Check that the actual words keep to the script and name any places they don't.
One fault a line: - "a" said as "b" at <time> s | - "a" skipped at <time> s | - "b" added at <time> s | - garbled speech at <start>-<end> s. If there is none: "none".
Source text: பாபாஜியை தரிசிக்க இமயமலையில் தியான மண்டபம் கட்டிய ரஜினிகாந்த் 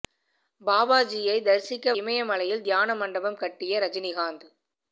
none